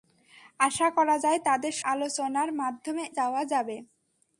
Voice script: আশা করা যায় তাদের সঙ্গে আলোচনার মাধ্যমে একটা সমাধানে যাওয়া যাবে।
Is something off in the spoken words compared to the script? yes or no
yes